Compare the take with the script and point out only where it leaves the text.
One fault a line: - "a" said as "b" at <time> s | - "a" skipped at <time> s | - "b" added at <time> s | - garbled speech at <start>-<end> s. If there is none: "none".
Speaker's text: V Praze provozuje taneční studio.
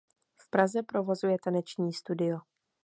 none